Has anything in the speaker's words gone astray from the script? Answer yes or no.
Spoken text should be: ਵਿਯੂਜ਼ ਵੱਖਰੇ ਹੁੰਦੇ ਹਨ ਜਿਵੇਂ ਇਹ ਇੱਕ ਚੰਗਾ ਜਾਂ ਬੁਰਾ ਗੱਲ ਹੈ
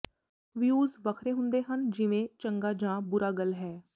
yes